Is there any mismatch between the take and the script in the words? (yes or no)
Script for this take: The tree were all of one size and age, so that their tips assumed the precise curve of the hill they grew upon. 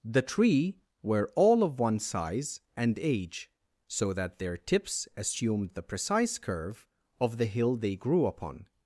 no